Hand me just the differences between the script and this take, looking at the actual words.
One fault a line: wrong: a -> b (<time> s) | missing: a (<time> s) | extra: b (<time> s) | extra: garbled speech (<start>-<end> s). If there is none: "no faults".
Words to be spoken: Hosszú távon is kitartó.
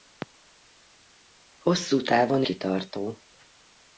missing: is (2.4 s)